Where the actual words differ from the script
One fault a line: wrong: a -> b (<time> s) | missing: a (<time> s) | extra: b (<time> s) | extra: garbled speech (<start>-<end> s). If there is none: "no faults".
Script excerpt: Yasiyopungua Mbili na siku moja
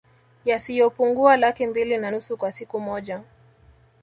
extra: Laki (1.4 s)
extra: nusu kwa (2.1 s)